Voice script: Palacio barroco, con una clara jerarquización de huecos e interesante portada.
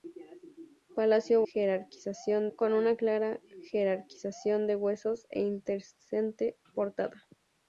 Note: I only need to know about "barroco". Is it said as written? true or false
false